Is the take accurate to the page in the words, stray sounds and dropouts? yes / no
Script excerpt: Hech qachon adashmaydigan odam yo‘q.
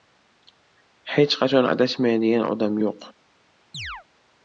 no